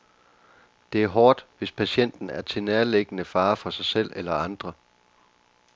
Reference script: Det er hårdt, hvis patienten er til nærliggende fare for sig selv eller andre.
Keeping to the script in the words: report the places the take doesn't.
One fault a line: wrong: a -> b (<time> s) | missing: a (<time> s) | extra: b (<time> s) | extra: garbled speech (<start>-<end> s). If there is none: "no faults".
no faults